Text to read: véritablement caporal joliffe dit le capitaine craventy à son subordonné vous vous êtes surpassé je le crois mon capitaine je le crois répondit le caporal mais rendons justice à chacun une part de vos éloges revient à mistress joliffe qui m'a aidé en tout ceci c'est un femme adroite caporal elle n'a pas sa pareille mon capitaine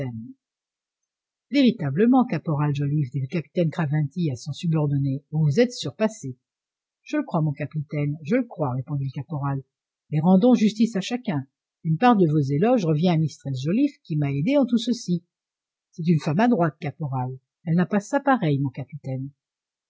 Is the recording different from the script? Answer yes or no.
yes